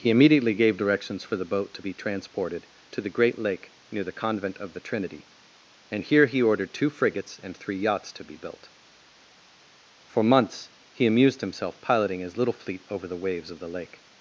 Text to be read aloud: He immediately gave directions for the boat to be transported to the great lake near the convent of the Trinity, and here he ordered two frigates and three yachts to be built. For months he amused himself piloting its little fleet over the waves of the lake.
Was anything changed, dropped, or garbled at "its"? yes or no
yes